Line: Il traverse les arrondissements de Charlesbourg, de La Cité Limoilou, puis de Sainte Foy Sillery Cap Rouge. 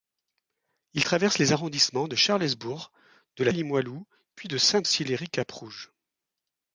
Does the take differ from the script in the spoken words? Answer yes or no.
yes